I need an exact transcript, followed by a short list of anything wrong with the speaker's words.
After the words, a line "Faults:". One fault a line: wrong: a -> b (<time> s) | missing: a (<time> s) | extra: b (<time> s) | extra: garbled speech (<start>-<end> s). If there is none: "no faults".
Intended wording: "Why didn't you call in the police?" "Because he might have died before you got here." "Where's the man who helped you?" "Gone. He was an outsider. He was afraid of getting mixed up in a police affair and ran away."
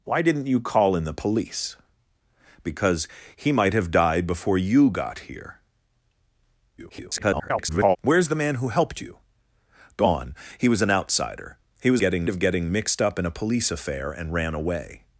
"Why didn't you call in the police?" "Because he might have died before you got here." [garbled] "Where's the man who helped you?" "Gone. He was an outsider. He was getting of getting mixed up in a police affair and ran away."
Faults:
extra: garbled speech (6.8-8.0 s)
wrong: afraid -> getting (12.0 s)